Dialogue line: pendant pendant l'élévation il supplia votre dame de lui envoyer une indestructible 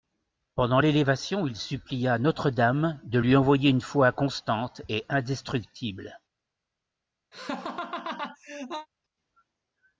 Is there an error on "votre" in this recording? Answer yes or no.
yes